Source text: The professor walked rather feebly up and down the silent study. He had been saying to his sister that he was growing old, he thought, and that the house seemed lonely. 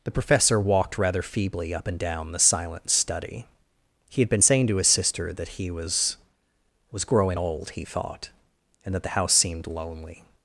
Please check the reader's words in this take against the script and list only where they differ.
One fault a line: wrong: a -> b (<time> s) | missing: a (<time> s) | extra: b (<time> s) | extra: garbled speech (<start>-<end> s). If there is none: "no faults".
extra: was (6.9 s)